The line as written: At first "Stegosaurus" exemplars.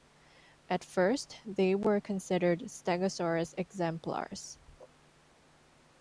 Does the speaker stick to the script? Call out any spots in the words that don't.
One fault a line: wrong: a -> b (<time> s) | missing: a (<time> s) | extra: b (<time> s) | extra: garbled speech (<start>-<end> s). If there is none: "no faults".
extra: they were considered (1.4 s)